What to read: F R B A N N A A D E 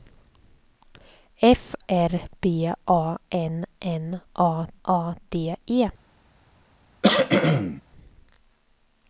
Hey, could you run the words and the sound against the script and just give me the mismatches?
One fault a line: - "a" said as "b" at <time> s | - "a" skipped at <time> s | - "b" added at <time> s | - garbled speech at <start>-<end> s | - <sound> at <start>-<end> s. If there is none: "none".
- cough at 7.0-7.8 s